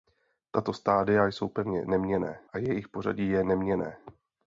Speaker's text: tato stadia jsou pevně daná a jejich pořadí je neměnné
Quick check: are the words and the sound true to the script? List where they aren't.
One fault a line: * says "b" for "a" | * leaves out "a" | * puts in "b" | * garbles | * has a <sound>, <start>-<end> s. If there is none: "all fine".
* says "neměnné" for "daná"